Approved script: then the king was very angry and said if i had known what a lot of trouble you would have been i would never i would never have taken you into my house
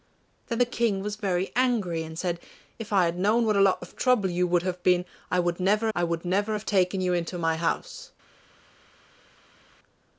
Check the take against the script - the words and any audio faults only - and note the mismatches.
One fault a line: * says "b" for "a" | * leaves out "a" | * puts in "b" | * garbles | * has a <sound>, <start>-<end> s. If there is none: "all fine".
all fine